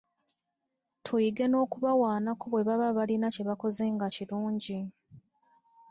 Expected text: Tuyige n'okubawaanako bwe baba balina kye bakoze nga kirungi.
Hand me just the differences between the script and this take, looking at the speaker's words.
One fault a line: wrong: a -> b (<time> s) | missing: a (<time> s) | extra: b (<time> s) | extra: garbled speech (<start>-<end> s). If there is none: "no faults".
no faults